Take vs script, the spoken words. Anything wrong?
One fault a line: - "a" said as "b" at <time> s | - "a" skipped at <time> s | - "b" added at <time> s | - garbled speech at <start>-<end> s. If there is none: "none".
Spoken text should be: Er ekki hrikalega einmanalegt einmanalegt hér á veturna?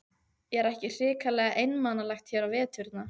- "einmanalegt" skipped at 2.3 s